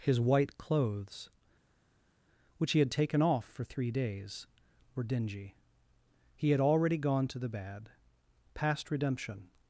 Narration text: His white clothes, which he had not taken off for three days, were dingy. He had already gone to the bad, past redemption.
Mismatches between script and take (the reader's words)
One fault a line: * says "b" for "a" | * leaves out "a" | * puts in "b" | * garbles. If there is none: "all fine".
* leaves out "not"